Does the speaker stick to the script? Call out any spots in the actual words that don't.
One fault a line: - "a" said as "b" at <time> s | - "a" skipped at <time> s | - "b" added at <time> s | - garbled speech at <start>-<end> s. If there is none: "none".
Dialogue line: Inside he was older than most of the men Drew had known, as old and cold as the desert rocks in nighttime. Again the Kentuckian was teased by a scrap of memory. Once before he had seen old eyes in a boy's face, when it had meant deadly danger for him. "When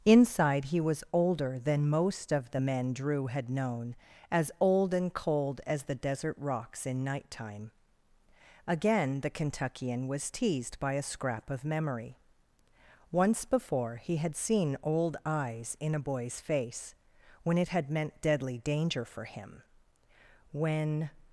none